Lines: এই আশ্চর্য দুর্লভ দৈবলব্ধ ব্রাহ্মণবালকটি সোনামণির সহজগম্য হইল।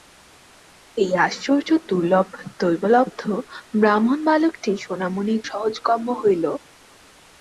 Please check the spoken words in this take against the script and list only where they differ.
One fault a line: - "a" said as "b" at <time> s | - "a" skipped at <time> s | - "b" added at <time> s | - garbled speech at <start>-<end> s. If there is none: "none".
none